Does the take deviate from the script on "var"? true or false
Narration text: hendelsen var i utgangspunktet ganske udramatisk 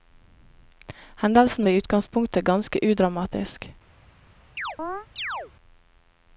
true